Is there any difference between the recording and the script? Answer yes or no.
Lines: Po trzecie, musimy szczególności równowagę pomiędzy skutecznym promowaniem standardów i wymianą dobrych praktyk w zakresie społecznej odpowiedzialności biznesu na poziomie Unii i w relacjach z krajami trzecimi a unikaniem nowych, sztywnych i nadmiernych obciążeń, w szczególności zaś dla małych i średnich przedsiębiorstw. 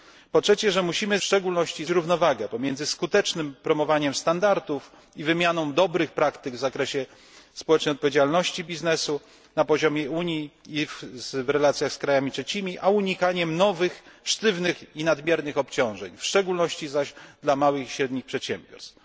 no